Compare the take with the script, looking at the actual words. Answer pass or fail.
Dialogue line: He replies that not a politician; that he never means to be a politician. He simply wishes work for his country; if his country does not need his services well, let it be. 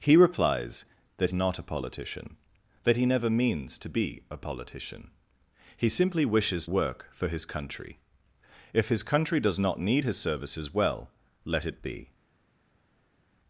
pass